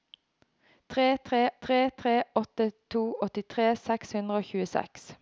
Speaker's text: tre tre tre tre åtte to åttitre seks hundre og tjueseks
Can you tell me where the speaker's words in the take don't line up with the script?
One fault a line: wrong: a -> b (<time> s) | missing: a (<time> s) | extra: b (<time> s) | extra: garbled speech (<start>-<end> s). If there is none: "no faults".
no faults